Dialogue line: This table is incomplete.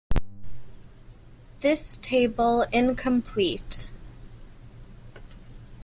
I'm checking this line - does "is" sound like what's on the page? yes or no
no